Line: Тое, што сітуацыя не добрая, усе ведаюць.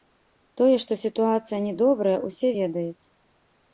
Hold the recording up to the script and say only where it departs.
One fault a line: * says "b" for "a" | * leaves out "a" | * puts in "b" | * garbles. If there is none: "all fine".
all fine